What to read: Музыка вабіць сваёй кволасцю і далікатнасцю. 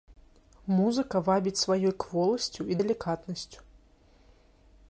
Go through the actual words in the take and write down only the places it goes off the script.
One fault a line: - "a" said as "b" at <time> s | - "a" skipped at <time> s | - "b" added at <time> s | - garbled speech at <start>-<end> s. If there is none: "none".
none